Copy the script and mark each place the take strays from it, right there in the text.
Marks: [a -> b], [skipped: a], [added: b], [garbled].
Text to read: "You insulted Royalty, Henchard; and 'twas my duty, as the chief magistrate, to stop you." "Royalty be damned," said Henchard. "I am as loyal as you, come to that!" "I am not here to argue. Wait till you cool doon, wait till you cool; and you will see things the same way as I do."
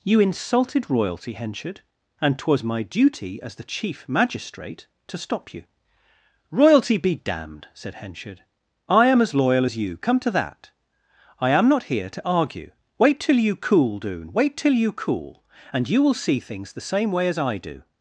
"You insulted Royalty, Henchard; and 'twas my duty, as the chief magistrate, to stop you." "Royalty be damned," said Henchard. "I am as loyal as you, come to that!" "I am not here to argue. Wait till you cool doon, wait till you cool; and you will see things the same way as I do."